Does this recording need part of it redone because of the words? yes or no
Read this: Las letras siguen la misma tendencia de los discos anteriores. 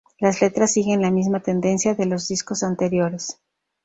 no